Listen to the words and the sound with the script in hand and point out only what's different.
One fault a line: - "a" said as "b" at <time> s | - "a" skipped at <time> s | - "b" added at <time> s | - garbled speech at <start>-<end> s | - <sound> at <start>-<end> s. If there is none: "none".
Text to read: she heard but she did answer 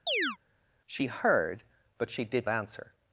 - chirp at 0.1-0.4 s